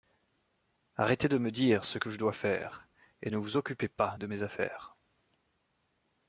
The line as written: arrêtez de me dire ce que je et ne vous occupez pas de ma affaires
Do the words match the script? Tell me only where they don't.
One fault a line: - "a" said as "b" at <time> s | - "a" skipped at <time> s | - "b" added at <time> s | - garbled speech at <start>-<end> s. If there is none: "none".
- "dois faire" added at 2.2 s
- "ma" said as "mes" at 4.3 s